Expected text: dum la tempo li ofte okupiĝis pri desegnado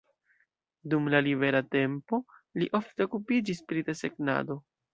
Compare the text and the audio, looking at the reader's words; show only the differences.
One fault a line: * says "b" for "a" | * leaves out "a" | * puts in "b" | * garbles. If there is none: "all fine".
* puts in "libera"